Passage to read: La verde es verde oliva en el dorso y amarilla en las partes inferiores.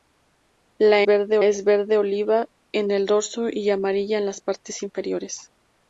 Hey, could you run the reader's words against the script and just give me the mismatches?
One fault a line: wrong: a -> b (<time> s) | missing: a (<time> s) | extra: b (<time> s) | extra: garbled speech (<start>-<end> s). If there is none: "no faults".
no faults